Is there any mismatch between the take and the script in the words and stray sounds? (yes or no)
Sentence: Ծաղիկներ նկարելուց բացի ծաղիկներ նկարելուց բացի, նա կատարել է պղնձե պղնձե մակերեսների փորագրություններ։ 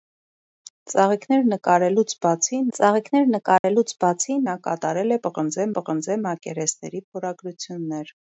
yes